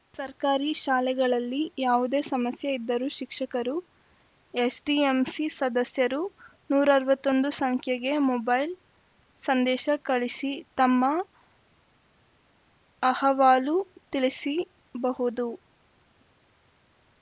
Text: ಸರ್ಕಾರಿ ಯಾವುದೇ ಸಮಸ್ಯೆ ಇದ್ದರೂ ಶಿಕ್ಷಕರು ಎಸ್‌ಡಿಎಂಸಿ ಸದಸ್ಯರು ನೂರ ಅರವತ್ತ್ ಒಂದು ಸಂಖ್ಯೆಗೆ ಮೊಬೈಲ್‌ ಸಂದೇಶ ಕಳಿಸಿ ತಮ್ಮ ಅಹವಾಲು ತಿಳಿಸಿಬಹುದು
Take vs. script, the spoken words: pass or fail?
fail